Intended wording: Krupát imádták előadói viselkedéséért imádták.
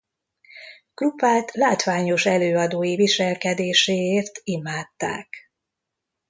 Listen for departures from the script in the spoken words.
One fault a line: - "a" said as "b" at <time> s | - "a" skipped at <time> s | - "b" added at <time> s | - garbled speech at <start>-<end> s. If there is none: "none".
- "imádták" said as "látványos" at 1.5 s